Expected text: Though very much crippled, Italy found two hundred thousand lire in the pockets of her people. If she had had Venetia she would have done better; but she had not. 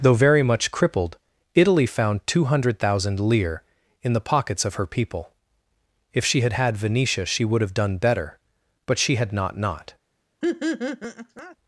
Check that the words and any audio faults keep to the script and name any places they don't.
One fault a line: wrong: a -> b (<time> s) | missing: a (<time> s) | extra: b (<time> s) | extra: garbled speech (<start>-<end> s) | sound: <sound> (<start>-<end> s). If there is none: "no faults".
extra: not (9.6 s)
sound: laugh (10.4-11.6 s)